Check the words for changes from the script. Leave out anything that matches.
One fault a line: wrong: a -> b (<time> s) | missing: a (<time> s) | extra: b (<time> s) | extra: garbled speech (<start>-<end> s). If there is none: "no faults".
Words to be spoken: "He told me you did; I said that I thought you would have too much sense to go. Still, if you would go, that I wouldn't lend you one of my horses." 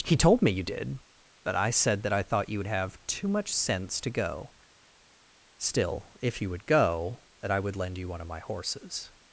extra: but (1.4 s)
wrong: wouldn't -> would (7.6 s)